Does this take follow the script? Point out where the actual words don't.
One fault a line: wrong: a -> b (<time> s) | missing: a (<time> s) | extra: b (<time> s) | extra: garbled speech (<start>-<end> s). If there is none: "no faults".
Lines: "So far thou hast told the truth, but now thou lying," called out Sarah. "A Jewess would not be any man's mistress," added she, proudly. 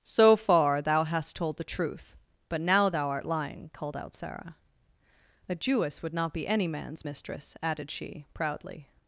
extra: art (3.1 s)